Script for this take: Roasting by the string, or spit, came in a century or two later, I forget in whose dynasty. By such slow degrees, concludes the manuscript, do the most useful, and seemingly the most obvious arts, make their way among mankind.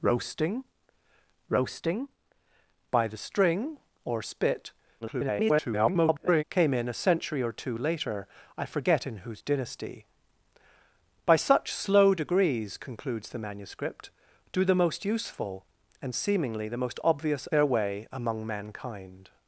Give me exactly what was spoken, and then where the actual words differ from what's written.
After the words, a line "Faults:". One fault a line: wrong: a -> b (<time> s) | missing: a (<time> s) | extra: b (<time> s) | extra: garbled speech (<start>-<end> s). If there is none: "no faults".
Roasting roasting by the string, or spit, [garbled] came in a century or two later, I forget in whose dynasty. By such slow degrees, concludes the manuscript, do the most useful, and seemingly the most obvious their way among mankind.
Faults:
extra: roasting (1.5 s)
extra: garbled speech (5.0-6.4 s)
missing: arts make (17.5 s)